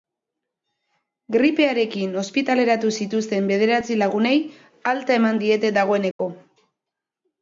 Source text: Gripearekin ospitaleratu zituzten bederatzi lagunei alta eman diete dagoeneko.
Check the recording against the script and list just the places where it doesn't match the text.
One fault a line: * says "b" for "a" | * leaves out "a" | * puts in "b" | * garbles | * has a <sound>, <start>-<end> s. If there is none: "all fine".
* has a dropout, 6.1-6.2 s